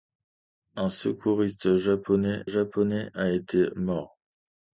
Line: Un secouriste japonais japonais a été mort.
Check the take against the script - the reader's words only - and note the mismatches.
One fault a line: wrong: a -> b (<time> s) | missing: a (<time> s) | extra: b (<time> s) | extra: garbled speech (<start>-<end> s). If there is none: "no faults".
no faults